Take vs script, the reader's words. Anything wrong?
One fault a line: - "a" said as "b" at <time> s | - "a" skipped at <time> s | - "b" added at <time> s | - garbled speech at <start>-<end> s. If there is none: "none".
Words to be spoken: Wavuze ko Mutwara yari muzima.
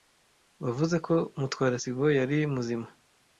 - "sibo" added at 1.8 s